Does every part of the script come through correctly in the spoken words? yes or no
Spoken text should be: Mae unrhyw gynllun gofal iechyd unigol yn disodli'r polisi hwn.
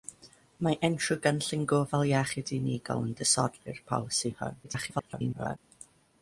no